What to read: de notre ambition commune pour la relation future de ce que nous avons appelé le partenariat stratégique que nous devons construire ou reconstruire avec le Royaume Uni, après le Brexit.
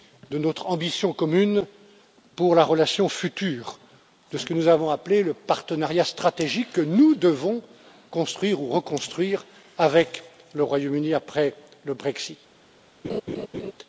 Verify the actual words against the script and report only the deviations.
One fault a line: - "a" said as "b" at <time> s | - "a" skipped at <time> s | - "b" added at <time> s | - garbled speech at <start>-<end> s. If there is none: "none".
none